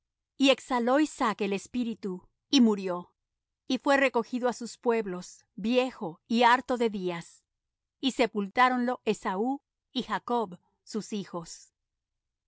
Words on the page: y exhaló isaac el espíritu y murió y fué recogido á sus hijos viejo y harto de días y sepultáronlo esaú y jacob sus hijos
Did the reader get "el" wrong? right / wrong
right